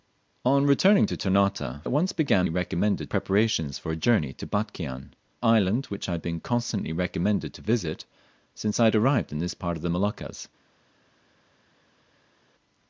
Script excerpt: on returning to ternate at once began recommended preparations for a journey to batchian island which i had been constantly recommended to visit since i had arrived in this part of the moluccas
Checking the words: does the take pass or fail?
pass